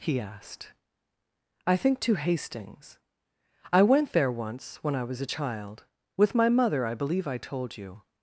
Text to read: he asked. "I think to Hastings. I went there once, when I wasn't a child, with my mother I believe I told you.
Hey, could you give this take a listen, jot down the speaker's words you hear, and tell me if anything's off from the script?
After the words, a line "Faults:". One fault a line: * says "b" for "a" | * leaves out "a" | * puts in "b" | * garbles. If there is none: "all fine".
he asked. "I think to Hastings. I went there once, when I was a child, with my mother I believe I told you.
Faults:
* says "was" for "wasn't"